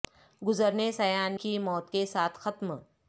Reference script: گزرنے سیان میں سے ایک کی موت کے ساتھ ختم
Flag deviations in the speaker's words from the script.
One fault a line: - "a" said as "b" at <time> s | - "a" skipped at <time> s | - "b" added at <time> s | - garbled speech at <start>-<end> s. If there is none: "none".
- "میں سے ایک" skipped at 1.4 s